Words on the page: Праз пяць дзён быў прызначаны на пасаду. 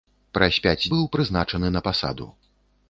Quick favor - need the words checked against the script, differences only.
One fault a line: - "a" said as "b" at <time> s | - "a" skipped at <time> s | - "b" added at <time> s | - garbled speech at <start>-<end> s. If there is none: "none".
- "дзён" skipped at 0.9 s